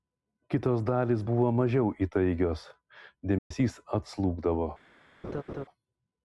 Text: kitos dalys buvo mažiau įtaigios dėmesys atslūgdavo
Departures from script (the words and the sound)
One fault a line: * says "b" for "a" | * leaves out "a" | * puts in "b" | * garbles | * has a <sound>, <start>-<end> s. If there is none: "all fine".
* has a dropout, 3.4-3.5 s
* has a laugh, 5.2-5.6 s